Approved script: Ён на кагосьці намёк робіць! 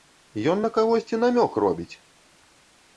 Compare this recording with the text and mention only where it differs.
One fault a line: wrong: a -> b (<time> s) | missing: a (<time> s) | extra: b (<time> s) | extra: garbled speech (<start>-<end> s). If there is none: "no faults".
no faults